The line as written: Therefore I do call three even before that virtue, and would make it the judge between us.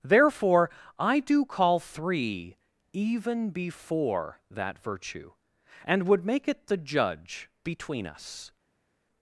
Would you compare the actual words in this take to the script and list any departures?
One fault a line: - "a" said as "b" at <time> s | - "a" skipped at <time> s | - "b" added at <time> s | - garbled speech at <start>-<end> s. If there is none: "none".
none